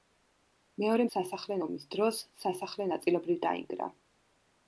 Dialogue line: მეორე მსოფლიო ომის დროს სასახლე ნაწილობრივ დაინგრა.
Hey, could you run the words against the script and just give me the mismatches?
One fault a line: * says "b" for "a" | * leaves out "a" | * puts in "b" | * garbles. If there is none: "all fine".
* says "სასახლე" for "მსოფლიო"